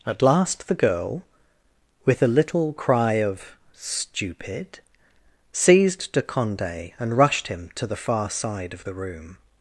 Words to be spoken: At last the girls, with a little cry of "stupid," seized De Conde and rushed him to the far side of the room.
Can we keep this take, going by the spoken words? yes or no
no